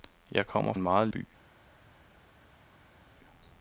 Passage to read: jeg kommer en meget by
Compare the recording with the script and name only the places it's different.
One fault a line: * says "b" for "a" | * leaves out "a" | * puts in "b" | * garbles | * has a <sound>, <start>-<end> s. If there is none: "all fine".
all fine